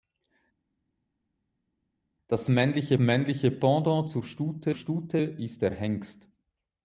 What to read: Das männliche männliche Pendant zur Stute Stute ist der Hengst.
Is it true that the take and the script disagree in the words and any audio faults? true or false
false